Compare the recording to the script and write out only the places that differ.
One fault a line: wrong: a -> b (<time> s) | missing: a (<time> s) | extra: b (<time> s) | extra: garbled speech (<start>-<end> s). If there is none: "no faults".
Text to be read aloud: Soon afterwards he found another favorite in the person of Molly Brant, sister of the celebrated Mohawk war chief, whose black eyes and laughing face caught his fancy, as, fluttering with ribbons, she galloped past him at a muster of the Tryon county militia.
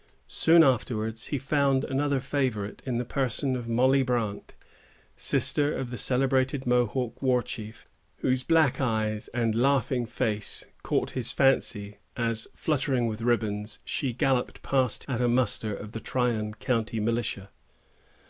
missing: him (15.0 s)